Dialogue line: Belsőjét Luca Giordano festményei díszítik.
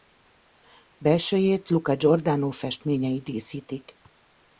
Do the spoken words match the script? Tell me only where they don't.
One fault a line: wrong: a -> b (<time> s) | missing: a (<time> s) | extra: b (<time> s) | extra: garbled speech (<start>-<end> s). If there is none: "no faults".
no faults